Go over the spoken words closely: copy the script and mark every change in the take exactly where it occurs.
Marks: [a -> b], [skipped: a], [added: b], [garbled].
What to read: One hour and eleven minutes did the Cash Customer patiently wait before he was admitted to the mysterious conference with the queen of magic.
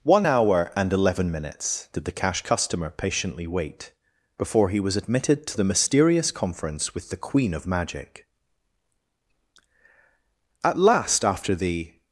One hour and eleven minutes did the Cash Customer patiently wait before he was admitted to the mysterious conference with the queen of magic. [added: At last after the]